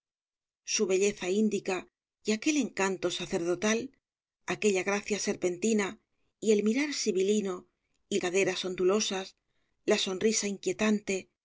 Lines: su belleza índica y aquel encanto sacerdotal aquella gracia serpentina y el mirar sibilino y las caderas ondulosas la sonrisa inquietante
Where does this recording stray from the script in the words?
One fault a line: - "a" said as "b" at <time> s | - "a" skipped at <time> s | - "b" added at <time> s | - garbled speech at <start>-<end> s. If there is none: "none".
- "las" skipped at 8.2 s